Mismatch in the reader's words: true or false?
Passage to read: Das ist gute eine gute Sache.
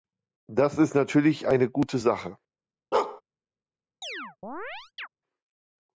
true